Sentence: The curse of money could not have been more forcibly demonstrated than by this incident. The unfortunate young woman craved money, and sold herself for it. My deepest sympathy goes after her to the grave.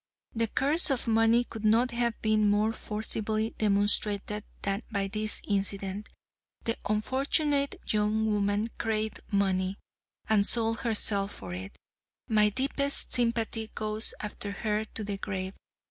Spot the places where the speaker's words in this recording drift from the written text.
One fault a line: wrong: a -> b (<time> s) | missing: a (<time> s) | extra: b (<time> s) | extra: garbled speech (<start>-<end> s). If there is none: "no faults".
no faults